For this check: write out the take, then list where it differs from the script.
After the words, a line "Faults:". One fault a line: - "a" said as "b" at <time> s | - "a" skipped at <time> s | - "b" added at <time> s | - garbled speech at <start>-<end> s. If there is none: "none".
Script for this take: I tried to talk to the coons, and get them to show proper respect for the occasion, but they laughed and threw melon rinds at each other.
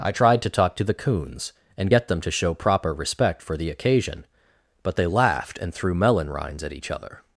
I tried to talk to the coons, and get them to show proper respect for the occasion, but they laughed and threw melon rinds at each other.
Faults:
none